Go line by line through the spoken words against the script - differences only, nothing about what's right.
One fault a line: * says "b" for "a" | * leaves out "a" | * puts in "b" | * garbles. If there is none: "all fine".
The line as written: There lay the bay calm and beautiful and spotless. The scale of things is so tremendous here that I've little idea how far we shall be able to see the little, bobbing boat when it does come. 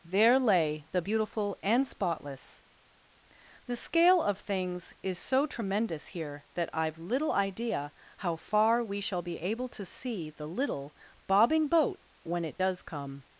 * leaves out "bay calm and"